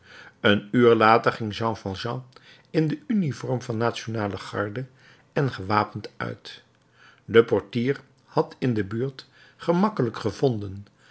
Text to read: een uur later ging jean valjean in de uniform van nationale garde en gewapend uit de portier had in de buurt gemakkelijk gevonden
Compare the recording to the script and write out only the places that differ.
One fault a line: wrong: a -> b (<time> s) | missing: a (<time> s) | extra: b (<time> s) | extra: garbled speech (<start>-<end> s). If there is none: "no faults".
no faults